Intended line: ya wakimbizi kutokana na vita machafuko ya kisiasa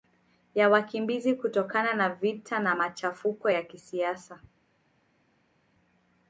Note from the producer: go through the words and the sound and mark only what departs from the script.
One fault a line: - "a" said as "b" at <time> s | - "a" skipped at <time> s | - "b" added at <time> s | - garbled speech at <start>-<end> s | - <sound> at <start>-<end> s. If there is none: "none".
- "na" added at 2.6 s